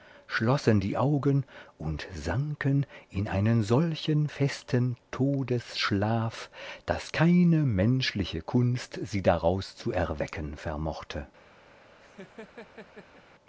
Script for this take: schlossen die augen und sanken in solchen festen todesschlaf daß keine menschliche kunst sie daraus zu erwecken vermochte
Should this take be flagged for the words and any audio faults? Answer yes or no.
yes